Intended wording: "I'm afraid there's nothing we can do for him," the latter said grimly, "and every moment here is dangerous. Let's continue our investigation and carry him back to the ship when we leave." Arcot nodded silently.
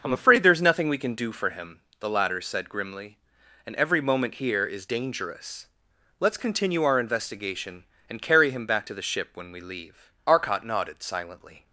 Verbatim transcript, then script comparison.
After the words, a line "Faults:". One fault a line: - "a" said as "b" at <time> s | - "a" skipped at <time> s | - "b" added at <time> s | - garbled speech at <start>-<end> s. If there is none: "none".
"I'm afraid there's nothing we can do for him," the latter said grimly, "and every moment here is dangerous. Let's continue our investigation and carry him back to the ship when we leave." Arcot nodded silently.
Faults:
none